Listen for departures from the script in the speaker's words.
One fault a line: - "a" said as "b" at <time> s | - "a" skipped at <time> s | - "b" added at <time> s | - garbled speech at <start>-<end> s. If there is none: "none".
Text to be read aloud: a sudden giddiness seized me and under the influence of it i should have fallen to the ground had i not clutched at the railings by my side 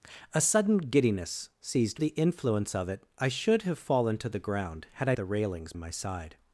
- "me and under" skipped at 2.0 s
- "not clutched at" skipped at 5.1 s
- "by" skipped at 5.7 s